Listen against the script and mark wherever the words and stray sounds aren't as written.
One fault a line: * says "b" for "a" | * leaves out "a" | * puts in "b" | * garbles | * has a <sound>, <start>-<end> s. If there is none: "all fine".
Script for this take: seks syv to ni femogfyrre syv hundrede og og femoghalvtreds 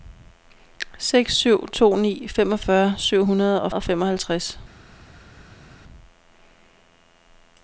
all fine